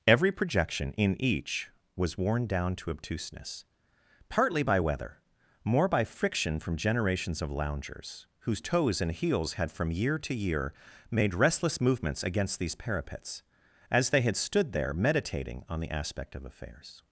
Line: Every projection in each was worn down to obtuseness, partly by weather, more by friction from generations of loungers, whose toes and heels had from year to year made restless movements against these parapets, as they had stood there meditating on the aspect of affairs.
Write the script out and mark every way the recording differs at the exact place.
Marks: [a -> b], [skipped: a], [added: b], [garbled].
Every projection in each was worn down to obtuseness, partly by weather, more by friction from generations of loungers, whose toes and heels had from year to year made restless movements against these parapets, as they had stood there meditating on the aspect of affairs.